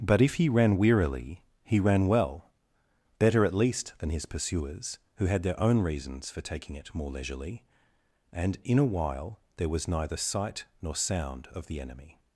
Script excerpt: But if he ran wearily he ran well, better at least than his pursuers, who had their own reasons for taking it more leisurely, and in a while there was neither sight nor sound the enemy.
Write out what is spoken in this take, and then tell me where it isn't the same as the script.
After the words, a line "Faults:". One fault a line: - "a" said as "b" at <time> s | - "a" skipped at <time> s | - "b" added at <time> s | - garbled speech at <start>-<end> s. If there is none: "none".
But if he ran wearily he ran well, better at least than his pursuers, who had their own reasons for taking it more leisurely, and in a while there was neither sight nor sound of the enemy.
Faults:
- "of" added at 11.5 s